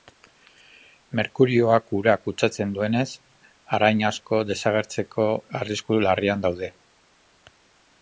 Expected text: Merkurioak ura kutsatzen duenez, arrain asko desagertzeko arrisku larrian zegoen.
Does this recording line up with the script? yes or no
no